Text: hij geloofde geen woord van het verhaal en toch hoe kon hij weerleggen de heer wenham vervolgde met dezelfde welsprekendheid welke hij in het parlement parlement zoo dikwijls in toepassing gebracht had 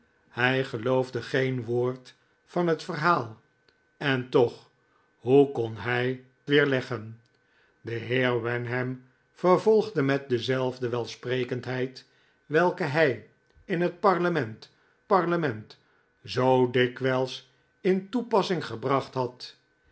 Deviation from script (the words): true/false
false